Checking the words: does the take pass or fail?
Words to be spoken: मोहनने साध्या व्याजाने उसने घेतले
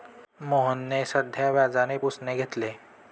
pass